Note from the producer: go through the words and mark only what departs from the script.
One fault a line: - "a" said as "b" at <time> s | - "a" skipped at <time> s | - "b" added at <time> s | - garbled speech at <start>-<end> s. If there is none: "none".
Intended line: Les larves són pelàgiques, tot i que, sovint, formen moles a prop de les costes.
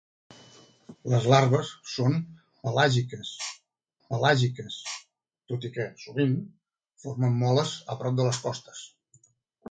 - "pelàgiques" added at 4.1 s